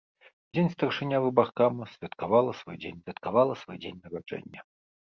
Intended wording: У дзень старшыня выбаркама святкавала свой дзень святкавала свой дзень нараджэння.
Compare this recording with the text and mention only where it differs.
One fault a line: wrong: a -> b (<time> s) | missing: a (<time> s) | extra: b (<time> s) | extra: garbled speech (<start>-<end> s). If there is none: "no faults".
no faults